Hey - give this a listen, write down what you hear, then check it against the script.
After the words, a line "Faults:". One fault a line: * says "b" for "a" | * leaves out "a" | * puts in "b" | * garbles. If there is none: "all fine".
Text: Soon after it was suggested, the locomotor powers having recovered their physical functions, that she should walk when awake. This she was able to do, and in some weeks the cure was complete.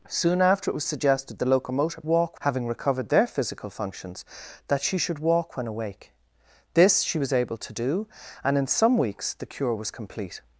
Soon after it was suggested, the locomotor walk having recovered their physical functions, that she should walk when awake. This she was able to do, and in some weeks the cure was complete.
Faults:
* says "walk" for "powers"